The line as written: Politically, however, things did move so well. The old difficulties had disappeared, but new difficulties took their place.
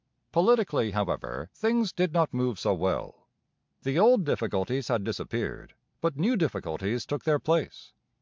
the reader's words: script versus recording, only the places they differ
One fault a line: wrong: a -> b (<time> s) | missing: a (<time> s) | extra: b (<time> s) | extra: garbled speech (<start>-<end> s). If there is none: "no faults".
extra: not (2.1 s)